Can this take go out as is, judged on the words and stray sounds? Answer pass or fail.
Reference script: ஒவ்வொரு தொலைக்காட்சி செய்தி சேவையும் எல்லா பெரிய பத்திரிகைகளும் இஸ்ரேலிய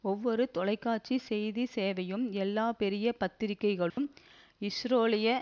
fail